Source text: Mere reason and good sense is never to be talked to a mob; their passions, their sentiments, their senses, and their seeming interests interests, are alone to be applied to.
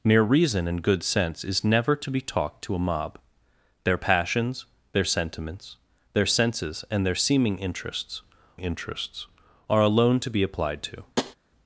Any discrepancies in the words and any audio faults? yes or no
yes